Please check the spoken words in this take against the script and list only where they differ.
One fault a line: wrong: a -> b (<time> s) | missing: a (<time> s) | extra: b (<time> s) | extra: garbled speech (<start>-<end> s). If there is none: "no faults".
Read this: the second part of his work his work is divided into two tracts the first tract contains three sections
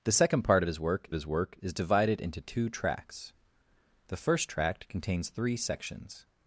no faults